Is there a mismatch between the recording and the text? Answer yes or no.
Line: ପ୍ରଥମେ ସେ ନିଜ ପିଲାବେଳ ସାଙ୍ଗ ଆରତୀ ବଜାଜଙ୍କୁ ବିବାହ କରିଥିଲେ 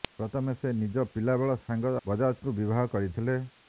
yes